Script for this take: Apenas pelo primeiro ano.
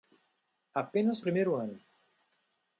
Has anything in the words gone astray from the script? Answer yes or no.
yes